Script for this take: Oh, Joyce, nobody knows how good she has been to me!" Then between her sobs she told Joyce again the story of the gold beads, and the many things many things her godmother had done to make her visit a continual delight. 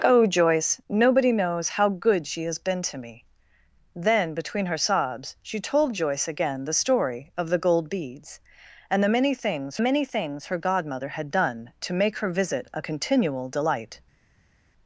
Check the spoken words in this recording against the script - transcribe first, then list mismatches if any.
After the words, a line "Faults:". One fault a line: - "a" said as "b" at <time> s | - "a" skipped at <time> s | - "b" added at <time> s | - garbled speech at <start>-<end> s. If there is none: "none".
Oh, Joyce, nobody knows how good she has been to me!" Then between her sobs she told Joyce again the story of the gold beads, and the many things many things her godmother had done to make her visit a continual delight.
Faults:
none